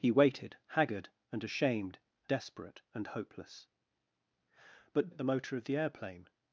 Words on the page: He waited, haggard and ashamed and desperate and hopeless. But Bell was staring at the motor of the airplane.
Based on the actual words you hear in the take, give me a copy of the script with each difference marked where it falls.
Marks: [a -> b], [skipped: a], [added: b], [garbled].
He waited, haggard and ashamed [skipped: and] desperate and hopeless. But [skipped: Bell was staring] at the motor of the airplane.